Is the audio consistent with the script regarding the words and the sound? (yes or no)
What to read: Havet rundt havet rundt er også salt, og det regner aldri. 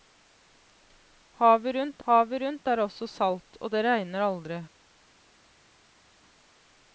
yes